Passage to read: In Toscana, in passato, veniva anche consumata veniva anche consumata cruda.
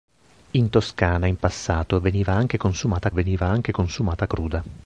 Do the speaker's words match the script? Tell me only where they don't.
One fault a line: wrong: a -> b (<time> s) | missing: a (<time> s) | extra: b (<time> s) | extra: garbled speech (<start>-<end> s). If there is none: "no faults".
no faults